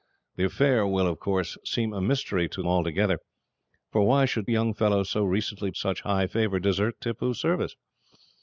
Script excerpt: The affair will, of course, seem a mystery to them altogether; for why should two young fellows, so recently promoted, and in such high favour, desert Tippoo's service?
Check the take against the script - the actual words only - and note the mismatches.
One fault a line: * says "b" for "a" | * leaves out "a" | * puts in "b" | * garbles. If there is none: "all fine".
* leaves out "them"
* leaves out "two"
* leaves out "promoted and in"